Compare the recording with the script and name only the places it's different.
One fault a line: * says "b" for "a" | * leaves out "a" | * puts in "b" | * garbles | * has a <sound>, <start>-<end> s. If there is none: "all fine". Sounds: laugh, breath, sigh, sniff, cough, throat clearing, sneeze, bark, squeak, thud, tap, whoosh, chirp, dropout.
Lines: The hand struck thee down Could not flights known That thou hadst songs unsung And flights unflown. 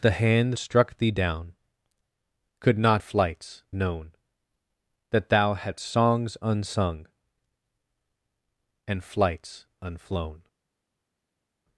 all fine